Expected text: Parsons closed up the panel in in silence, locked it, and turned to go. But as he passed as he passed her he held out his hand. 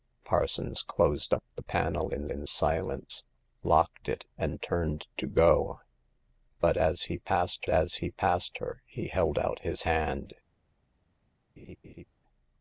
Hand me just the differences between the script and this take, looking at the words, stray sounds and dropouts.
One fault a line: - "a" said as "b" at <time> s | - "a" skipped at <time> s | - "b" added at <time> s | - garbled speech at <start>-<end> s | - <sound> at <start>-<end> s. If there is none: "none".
- laugh at 11.6-12.0 s